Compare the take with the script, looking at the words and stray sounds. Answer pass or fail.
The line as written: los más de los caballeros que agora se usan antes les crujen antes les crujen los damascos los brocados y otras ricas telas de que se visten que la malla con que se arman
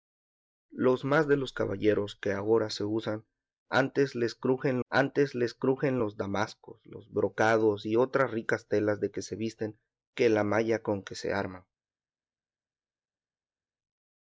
pass